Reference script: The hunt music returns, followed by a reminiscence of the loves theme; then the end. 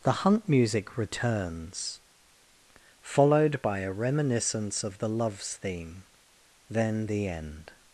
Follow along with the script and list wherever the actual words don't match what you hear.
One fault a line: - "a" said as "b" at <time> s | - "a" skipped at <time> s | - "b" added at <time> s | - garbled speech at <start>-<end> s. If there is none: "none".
none